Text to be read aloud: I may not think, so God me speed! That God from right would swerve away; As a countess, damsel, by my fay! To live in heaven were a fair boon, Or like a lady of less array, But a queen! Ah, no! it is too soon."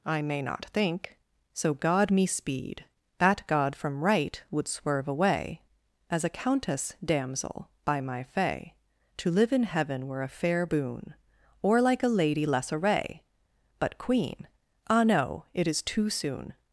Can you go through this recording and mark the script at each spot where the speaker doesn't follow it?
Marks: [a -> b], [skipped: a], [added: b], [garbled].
I may not think, so God me speed! That God from right would swerve away; As a countess, damsel, by my fay! To live in heaven were a fair boon, Or like a lady [skipped: of] less array, But [skipped: a] queen! Ah, no! it is too soon."